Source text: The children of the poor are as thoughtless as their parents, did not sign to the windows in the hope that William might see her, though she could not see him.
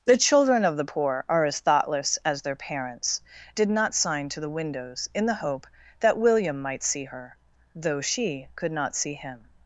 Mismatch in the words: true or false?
false